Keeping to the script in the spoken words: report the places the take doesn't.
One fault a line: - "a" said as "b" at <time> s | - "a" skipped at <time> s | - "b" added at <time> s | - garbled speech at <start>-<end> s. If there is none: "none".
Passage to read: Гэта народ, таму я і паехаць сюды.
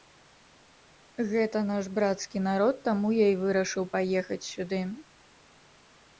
- "наш брацкі" added at 1.7 s
- "вырашыў" added at 3.4 s